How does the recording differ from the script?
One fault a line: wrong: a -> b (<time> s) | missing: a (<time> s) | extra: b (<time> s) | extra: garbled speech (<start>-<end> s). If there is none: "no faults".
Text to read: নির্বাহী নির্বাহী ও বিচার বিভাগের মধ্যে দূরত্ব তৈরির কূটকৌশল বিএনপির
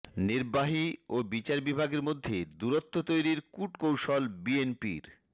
missing: নির্বাহী (0.8 s)